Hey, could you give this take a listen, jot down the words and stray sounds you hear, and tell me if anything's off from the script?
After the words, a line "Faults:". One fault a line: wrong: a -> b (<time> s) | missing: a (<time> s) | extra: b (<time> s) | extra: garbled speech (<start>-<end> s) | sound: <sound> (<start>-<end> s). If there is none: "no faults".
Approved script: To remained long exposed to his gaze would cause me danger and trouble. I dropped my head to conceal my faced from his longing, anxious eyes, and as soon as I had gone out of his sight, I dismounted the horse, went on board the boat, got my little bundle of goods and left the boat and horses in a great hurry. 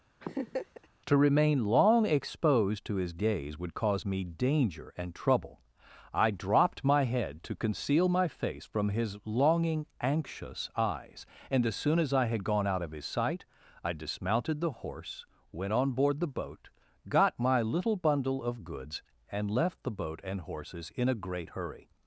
To remain long exposed to his gaze would cause me danger and trouble. I dropped my head to conceal my face from his longing, anxious eyes, and as soon as I had gone out of his sight, I dismounted the horse, went on board the boat, got my little bundle of goods and left the boat and horses in a great hurry.
Faults:
sound: laugh (0.2-0.9 s)
wrong: remained -> remain (1.2 s)
wrong: faced -> face (8.3 s)